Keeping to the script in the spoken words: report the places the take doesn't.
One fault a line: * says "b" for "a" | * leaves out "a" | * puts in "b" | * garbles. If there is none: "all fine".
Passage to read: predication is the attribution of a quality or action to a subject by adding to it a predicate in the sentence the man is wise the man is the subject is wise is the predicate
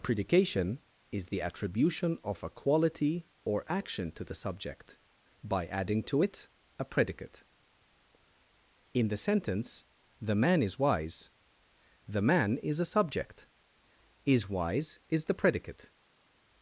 * says "the" for "a"
* says "a" for "the"